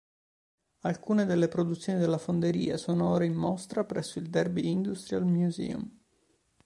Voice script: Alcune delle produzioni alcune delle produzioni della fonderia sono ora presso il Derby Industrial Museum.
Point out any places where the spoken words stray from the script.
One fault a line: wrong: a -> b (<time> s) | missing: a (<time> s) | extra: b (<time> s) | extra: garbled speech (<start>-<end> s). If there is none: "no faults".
missing: alcune delle produzioni (2.0 s)
extra: in mostra (3.2 s)